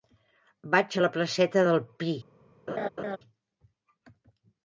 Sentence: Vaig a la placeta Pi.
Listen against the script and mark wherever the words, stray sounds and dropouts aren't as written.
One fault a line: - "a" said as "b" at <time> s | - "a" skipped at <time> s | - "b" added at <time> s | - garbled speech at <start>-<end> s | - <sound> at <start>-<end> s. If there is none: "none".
- "del" added at 1.7 s
- laugh at 2.7-3.2 s